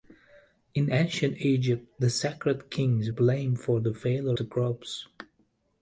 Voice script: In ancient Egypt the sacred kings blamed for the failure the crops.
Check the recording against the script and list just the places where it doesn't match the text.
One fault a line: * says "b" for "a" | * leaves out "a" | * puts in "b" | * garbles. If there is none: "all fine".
all fine